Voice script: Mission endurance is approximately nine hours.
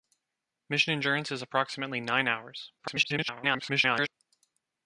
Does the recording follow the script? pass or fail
fail